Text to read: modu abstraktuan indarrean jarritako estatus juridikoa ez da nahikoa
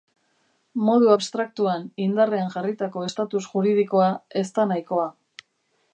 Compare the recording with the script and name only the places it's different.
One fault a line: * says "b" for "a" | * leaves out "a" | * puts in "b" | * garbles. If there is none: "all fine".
all fine